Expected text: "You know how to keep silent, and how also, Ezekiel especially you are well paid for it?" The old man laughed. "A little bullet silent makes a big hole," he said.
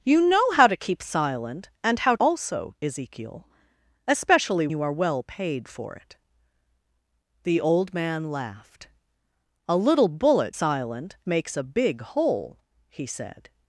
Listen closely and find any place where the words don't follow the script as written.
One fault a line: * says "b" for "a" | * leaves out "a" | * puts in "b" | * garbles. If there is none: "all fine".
all fine